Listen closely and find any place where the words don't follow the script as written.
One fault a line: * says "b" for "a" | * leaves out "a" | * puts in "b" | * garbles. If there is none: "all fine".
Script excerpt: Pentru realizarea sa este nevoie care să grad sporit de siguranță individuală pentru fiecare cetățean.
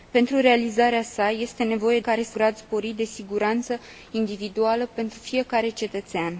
all fine